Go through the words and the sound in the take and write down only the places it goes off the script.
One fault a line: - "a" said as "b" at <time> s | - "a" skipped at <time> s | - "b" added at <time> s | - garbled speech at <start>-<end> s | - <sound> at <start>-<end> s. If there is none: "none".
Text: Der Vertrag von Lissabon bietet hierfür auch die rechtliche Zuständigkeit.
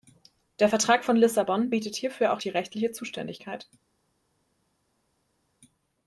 none